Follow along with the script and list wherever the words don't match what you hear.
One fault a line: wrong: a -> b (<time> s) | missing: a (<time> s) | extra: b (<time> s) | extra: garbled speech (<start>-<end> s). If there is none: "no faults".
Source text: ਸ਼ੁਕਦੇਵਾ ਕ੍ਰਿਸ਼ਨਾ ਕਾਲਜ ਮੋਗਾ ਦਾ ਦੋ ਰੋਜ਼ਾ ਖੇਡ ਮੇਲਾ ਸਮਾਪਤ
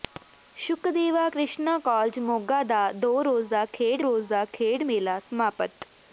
extra: ਰੋਜ਼ਾ ਖੇਡ (4.0 s)